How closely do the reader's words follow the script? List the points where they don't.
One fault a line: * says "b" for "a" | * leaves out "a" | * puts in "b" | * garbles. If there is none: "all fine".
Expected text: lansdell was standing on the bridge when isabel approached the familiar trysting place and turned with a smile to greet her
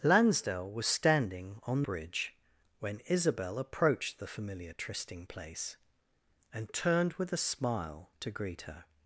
* leaves out "the"